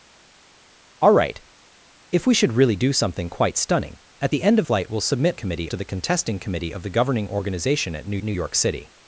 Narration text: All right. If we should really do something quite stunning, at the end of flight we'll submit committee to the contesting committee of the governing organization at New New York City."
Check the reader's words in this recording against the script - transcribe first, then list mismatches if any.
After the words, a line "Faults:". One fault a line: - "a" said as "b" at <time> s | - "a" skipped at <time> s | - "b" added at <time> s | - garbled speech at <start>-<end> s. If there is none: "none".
All right. If we should really do something quite stunning, at the end of flight we'll submit committee to the contesting committee of the governing organization at New New York City."
Faults:
none